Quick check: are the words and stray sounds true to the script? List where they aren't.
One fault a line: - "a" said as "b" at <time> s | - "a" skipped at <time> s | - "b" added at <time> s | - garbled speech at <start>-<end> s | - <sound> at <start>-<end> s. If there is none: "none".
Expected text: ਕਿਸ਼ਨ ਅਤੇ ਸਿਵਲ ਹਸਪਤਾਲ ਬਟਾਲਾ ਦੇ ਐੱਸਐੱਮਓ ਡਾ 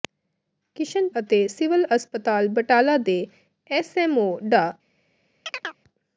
- chirp at 5.5-5.8 s